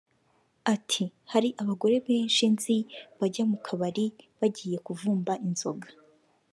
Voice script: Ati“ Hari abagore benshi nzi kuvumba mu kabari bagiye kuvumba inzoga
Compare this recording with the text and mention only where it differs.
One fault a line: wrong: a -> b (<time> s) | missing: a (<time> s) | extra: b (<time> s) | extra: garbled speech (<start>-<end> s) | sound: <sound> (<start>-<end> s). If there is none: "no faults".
wrong: kuvumba -> bajya (3.2 s)